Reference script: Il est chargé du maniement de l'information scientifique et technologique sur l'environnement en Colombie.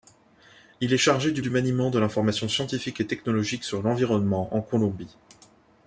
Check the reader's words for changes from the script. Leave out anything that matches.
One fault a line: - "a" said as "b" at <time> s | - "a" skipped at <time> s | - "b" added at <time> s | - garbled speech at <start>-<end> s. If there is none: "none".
- "du" added at 1.4 s